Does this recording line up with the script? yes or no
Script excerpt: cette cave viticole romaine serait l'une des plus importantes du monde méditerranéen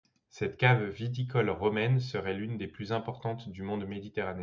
yes